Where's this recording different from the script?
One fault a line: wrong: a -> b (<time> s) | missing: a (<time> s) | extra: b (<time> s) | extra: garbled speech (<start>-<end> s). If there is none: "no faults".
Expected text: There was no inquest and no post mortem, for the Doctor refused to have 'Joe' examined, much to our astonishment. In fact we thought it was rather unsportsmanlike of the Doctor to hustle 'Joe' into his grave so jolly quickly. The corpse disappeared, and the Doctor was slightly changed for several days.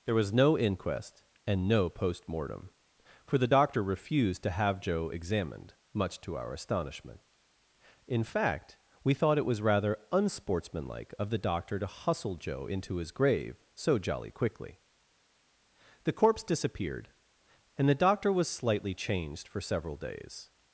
no faults